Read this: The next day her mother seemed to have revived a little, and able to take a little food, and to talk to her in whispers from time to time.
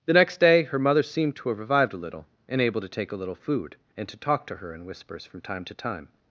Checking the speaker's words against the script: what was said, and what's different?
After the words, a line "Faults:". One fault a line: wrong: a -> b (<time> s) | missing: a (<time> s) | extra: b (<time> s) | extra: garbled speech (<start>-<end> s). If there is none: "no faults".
The next day her mother seemed to have revived a little, and able to take a little food, and to talk to her in whispers from time to time.
Faults:
no faults